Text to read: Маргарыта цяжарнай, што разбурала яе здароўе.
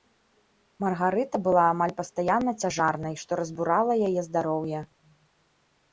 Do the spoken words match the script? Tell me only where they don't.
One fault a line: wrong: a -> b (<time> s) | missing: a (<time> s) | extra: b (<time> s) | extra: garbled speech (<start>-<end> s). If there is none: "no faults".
extra: была амаль пастаянна (1.5 s)